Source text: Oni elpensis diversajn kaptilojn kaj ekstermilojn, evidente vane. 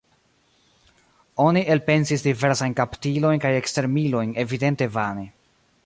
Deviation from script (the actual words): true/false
false